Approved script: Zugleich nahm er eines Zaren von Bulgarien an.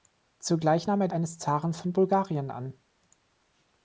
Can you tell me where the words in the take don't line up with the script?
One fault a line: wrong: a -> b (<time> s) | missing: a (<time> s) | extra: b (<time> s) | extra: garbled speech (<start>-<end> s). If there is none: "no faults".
no faults